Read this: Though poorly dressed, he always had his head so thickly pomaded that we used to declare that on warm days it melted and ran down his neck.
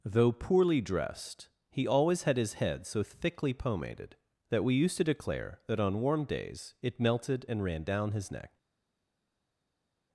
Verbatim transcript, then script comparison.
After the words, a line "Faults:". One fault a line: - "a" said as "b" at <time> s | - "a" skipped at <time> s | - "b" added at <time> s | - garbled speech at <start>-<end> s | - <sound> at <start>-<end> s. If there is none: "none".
Though poorly dressed, he always had his head so thickly pomaded that we used to declare that on warm days it melted and ran down his neck.
Faults:
none